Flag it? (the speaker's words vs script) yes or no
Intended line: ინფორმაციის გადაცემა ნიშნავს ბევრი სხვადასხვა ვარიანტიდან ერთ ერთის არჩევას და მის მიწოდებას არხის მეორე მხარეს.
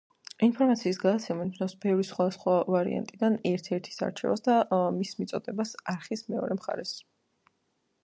no